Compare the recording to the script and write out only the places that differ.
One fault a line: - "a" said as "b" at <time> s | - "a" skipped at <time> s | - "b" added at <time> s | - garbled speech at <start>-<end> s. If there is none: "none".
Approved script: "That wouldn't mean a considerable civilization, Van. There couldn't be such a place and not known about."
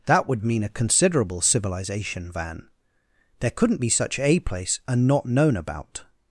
- "wouldn't" said as "would" at 0.3 s